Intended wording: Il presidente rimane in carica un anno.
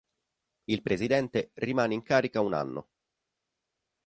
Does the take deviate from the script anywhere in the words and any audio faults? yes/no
no